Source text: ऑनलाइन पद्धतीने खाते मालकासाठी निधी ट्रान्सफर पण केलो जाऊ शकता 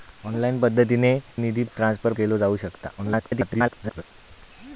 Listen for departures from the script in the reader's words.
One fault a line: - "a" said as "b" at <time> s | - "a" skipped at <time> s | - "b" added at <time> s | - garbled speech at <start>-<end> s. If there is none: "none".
- "खाते मालकासाठी" skipped at 1.1 s
- "पण" skipped at 2.1 s
- garbled speech at 3.0-4.0 s